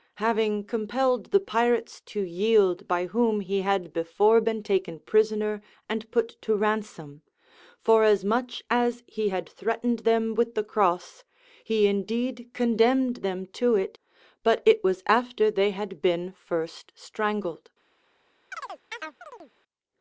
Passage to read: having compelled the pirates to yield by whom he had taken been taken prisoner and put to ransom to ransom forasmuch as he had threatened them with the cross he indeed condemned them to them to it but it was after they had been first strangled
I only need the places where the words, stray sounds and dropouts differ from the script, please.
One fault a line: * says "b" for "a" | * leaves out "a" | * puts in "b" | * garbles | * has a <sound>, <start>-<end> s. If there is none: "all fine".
* says "before" for "taken"
* leaves out "to ransom"
* leaves out "them to"
* has a chirp, 18.5-19.5 s